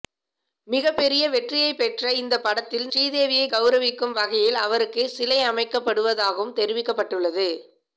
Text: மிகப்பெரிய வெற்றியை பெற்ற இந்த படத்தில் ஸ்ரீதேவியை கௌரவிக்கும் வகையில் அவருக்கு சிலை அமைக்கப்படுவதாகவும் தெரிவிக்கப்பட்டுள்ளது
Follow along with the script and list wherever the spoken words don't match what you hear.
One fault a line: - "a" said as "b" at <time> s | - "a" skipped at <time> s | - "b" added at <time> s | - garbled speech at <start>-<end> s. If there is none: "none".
none